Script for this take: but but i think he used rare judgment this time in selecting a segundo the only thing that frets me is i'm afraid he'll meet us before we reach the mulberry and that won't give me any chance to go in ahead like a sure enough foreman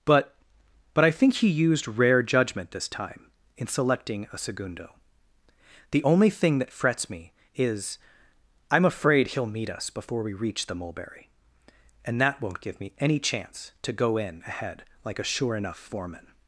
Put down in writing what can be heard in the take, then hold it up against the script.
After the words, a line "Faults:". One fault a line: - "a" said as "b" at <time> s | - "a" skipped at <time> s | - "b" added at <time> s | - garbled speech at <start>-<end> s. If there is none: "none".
but but i think he used rare judgment this time in selecting a segundo the only thing that frets me is i'm afraid he'll meet us before we reach the mulberry and that won't give me any chance to go in ahead like a sure enough foreman
Faults:
none